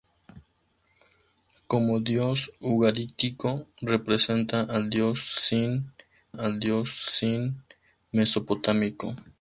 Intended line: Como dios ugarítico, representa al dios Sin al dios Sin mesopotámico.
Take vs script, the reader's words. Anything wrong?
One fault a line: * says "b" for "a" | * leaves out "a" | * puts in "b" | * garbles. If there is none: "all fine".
all fine